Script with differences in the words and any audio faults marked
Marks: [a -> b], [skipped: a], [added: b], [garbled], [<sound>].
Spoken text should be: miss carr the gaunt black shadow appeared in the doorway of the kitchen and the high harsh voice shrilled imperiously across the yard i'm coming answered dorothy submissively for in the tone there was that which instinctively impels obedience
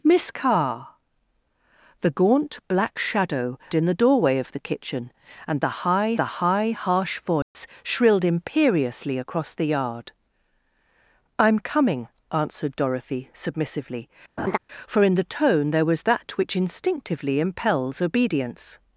miss carr the gaunt black shadow [skipped: appeared] in the doorway of the kitchen and the high [added: the high] harsh voice [dropout] shrilled imperiously across the yard i'm coming answered dorothy submissively [laugh] for in the tone there was that which instinctively impels obedience